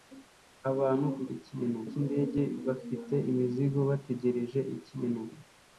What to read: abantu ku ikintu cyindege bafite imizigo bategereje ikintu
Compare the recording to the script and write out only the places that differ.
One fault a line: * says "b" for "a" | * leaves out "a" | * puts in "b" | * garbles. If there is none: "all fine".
all fine